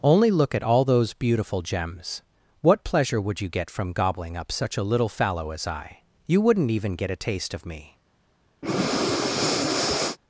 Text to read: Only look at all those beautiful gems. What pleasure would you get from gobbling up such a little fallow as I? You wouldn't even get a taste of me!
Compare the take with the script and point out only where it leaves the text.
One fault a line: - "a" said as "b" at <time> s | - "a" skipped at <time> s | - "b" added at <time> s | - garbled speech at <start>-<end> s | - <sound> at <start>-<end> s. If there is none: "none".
- breath at 8.6-10.2 s